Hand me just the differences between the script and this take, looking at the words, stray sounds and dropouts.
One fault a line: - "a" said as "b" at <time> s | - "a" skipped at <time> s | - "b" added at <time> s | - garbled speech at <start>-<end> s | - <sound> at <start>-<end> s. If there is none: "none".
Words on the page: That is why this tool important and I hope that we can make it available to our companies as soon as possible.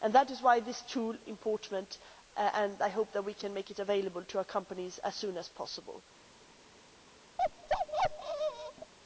- bark at 7.4-8.9 s